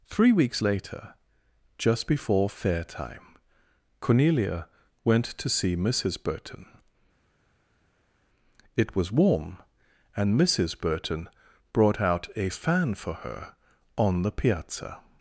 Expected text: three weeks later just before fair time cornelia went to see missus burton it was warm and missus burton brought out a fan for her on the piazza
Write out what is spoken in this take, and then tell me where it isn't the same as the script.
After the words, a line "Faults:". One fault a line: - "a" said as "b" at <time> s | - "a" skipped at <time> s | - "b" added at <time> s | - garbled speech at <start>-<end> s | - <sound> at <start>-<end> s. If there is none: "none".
three weeks later just before fair time cornelia went to see missus burton it was warm and missus burton brought out a fan for her on the piazza
Faults:
none